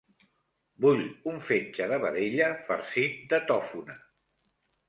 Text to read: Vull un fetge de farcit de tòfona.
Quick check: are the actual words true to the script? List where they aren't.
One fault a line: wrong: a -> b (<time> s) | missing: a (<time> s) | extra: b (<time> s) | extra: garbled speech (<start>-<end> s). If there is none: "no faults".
extra: vedella (2.0 s)